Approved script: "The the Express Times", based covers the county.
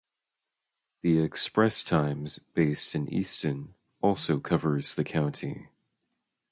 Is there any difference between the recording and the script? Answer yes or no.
yes